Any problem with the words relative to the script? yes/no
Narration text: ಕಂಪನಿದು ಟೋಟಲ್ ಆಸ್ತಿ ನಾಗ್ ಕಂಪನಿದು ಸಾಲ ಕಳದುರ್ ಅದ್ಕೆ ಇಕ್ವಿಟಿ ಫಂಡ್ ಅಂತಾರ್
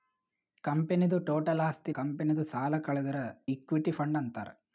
yes